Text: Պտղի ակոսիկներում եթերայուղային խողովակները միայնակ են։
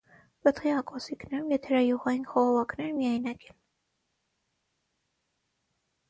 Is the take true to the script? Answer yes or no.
yes